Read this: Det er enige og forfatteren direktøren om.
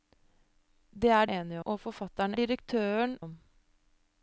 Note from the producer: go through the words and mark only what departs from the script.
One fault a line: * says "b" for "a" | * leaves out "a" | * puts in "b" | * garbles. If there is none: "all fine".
all fine